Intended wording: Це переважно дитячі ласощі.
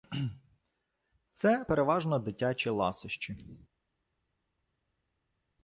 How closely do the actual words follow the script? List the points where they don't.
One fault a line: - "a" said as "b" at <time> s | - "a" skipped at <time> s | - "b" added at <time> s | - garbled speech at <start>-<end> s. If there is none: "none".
none